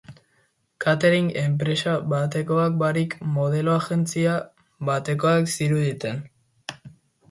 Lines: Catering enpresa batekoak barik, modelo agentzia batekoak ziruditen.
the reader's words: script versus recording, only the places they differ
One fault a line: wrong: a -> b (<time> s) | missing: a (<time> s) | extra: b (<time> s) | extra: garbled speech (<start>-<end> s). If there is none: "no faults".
no faults